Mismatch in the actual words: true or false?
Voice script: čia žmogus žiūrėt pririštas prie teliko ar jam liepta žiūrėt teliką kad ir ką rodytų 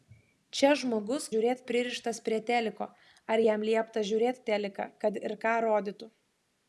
false